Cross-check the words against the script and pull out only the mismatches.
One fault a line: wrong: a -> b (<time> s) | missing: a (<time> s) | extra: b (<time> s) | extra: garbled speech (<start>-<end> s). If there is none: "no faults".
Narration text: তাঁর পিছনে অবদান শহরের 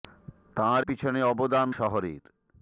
no faults